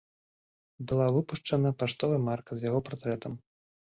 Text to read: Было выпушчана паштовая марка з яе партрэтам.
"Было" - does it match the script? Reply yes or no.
no